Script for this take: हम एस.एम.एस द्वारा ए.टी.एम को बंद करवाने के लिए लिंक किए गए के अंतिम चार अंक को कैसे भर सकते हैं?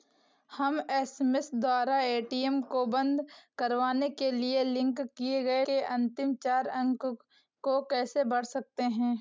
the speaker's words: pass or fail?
pass